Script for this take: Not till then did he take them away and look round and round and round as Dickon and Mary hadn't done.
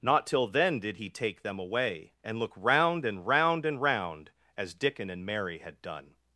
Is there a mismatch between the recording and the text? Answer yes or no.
yes